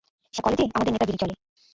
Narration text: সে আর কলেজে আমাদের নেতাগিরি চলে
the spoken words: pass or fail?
pass